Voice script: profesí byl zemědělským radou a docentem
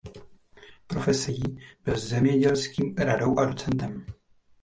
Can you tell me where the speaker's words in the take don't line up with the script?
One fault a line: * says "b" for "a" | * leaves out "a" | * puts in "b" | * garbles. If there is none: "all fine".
all fine